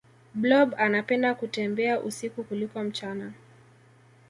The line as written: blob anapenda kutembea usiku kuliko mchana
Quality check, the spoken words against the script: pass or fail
pass